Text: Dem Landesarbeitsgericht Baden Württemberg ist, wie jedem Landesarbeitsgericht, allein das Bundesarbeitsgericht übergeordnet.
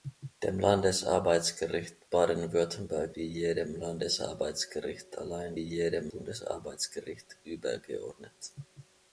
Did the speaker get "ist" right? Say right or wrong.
wrong